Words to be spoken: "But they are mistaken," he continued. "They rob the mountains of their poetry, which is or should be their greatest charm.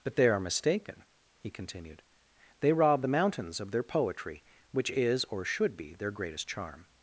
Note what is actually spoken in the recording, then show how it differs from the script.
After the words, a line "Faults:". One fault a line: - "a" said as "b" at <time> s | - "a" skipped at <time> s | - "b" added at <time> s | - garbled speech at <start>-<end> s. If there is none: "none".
"But they are mistaken," he continued. "They rob the mountains of their poetry, which is or should be their greatest charm.
Faults:
none